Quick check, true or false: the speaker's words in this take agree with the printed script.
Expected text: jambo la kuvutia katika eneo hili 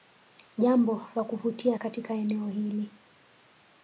true